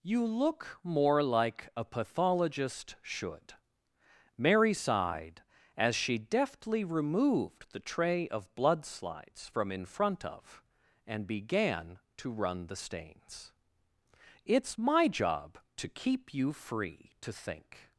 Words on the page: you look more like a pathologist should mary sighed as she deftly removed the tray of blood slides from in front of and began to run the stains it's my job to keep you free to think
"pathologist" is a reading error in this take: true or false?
false